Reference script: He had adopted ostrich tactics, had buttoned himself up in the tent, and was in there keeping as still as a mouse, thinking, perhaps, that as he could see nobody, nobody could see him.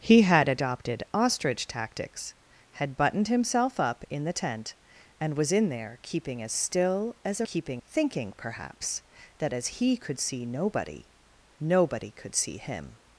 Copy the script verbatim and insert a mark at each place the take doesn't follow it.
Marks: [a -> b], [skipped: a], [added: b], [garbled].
He had adopted ostrich tactics, had buttoned himself up in the tent, and was in there keeping as still as a [mouse, -> keeping] thinking, perhaps, that as he could see nobody, nobody could see him.